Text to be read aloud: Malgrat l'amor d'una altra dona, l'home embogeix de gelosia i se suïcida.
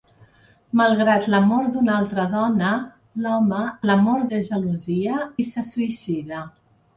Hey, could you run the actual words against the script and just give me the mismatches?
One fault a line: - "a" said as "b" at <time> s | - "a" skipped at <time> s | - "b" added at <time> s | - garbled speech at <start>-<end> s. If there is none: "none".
- "embogeix" said as "l'amor" at 3.9 s